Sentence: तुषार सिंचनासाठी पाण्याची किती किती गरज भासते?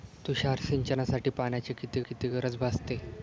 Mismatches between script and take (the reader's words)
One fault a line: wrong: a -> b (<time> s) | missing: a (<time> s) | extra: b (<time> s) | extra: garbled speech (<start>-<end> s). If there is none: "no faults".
no faults